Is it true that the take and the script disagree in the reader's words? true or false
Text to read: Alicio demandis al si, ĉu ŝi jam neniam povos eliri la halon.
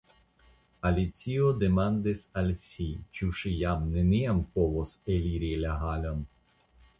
false